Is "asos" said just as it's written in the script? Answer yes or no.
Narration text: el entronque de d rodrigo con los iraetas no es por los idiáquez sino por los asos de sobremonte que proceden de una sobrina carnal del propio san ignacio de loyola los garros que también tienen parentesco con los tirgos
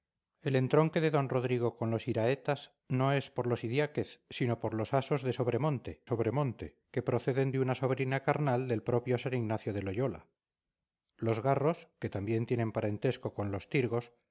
yes